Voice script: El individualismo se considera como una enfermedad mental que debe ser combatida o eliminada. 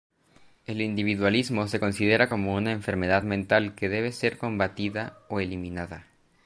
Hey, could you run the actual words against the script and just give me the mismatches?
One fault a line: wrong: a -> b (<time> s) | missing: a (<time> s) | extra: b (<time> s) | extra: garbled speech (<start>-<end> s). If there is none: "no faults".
no faults